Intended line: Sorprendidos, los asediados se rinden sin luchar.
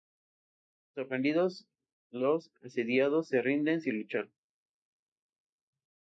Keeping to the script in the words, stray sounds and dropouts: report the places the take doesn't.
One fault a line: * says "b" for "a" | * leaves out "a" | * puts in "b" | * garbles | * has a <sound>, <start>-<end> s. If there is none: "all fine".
all fine